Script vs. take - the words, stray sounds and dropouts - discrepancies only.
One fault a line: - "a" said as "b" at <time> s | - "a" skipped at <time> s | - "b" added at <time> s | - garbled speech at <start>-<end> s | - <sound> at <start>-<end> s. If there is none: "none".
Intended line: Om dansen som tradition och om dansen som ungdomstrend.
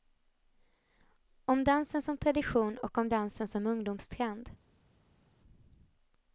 none